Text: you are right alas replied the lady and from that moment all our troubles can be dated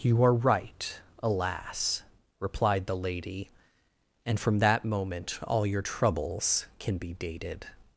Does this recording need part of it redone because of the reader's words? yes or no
yes